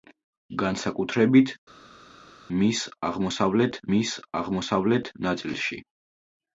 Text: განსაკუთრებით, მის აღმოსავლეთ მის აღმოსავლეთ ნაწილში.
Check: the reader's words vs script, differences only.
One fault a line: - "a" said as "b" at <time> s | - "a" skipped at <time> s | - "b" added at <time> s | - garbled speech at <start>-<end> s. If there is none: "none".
none